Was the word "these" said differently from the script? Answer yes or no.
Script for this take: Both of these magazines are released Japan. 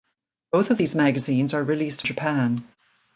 no